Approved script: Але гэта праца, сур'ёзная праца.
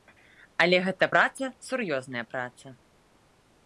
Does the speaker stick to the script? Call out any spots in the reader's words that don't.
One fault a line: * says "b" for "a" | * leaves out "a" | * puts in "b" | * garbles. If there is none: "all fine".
all fine